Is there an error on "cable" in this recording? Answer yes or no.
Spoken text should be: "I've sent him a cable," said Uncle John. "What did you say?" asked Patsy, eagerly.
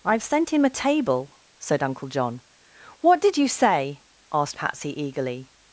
yes